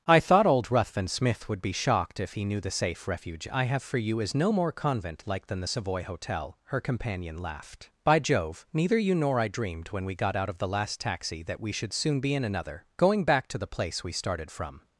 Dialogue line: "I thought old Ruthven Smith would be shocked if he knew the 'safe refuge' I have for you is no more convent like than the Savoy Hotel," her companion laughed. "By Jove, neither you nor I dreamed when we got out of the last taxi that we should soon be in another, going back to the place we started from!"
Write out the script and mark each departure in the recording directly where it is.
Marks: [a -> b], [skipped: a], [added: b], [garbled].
"I thought old Ruthven Smith would be shocked if he knew the 'safe refuge' I have for you is no more convent like than the Savoy Hotel," her companion laughed. "By Jove, neither you nor I dreamed when we got out of the last taxi that we should soon be in another, going back to the place we started from!"